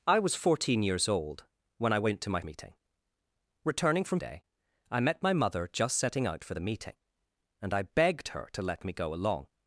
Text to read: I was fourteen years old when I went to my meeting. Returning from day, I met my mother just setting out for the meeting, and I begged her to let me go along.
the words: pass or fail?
pass